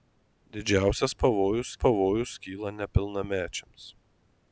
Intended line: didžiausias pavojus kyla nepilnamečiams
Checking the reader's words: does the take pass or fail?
fail